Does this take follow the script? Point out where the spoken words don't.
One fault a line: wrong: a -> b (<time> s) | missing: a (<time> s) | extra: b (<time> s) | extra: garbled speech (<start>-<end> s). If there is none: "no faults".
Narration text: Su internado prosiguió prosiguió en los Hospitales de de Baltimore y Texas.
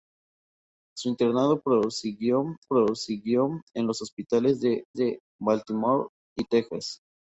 no faults